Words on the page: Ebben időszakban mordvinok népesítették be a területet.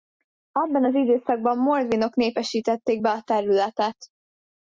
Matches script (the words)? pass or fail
fail